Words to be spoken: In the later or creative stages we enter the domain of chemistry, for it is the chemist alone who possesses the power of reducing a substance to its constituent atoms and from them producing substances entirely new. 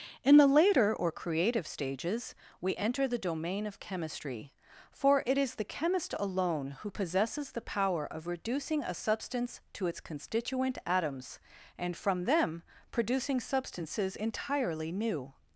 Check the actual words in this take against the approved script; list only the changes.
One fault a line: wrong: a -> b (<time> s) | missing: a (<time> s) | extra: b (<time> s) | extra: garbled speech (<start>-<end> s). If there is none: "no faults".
no faults